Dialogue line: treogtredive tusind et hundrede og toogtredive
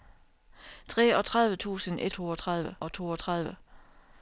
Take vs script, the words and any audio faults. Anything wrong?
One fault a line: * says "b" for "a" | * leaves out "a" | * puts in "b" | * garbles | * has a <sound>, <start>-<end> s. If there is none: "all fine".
* says "toogtredive" for "hundrede"